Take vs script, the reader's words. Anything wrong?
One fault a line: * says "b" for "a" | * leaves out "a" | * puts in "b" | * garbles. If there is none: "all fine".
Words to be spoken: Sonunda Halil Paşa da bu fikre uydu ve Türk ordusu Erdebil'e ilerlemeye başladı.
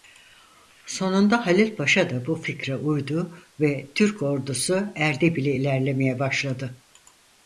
all fine